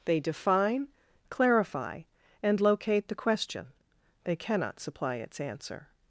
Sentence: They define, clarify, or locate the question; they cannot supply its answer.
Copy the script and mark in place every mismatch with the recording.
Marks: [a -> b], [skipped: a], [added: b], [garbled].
They define, clarify, [or -> and] locate the question; they cannot supply its answer.